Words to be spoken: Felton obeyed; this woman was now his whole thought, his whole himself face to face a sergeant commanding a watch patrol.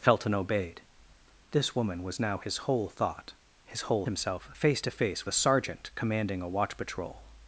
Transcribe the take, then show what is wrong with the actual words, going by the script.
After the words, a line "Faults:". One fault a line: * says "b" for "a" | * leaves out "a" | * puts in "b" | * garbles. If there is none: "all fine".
Felton obeyed; this woman was now his whole thought, his whole himself face to face a sergeant commanding a watch patrol.
Faults:
all fine